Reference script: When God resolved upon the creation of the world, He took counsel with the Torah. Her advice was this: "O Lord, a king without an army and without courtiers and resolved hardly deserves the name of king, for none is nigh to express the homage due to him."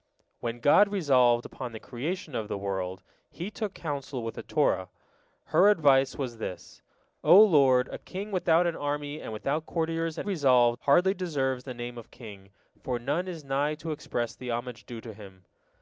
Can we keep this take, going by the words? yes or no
yes